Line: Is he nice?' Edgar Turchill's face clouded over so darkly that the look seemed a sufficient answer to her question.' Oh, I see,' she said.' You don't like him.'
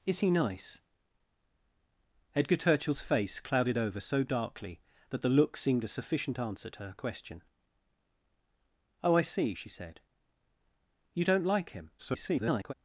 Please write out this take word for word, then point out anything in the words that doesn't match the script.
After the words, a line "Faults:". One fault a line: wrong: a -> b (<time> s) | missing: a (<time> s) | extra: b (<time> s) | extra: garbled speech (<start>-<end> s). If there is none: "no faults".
Is he nice?' Edgar Turchill's face clouded over so darkly that the look seemed a sufficient answer to her question.' Oh, I see,' she said.' You don't like him.' [garbled]
Faults:
extra: garbled speech (12.0-12.7 s)